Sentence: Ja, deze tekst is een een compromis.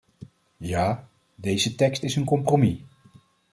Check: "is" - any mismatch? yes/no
no